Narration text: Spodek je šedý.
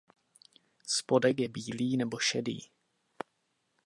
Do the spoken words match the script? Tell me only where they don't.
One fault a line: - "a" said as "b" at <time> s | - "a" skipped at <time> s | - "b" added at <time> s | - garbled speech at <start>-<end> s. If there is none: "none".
- "bílý nebo" added at 1.5 s